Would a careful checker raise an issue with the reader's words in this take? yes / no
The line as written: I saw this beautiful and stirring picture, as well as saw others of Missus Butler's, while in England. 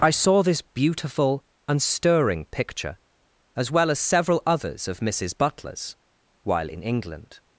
yes